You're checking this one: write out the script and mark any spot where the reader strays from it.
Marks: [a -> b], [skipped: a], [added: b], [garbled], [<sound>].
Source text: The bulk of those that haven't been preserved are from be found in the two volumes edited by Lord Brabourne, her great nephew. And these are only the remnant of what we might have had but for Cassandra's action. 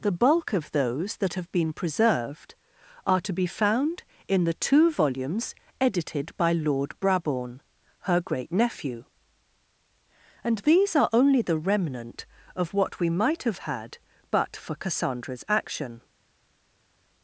The bulk of those that [haven't -> have] been preserved are [from -> to] be found in the two volumes edited by Lord Brabourne, her great nephew. And these are only the remnant of what we might have had but for Cassandra's action.